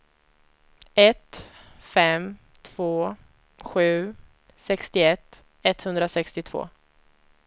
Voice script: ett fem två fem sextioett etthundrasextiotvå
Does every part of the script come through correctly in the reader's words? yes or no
no